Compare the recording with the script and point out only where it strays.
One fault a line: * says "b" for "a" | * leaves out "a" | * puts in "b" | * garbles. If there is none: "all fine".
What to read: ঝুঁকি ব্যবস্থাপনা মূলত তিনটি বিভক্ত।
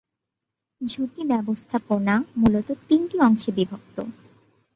* puts in "অংশে"